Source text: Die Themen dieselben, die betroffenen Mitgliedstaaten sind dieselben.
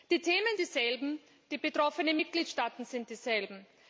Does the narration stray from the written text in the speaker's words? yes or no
no